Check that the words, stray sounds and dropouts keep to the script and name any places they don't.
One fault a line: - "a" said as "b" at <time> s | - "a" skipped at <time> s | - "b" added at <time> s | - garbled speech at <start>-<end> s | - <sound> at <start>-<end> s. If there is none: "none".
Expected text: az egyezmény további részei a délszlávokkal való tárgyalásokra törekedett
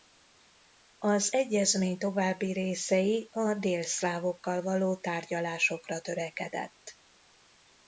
none